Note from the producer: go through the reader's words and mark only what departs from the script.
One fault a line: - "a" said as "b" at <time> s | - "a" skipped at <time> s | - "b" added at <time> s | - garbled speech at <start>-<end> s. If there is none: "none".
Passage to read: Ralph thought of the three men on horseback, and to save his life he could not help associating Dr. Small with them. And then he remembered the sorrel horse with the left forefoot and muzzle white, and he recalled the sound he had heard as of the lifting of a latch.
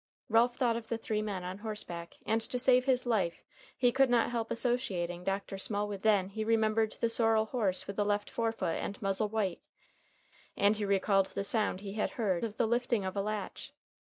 - "them And" skipped at 6.0 s
- "as" skipped at 12.4 s